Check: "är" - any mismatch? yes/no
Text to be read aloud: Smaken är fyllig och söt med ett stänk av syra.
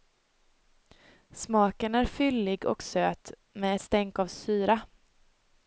no